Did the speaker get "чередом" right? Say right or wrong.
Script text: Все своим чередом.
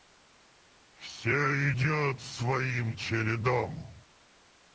right